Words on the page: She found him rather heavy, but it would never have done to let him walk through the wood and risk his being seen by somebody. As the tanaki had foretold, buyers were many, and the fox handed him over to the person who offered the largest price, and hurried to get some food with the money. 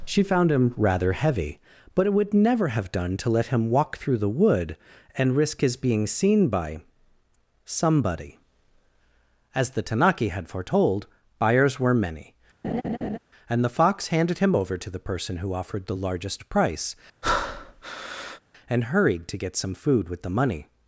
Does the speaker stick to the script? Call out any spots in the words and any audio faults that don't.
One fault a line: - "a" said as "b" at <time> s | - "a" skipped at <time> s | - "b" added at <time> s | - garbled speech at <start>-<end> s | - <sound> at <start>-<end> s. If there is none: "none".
- laugh at 12.6-13.2 s
- breath at 17.2-18.4 s